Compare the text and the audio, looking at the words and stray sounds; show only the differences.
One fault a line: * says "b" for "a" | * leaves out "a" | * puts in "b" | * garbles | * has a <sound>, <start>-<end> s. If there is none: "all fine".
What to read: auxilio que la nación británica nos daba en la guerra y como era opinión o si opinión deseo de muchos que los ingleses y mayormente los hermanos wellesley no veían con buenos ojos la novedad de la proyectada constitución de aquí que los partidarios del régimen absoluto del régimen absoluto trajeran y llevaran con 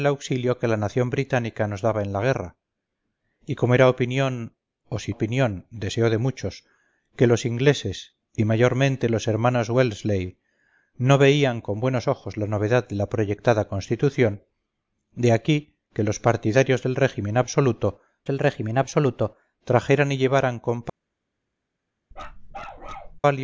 * has a bark, 22.1-23.2 s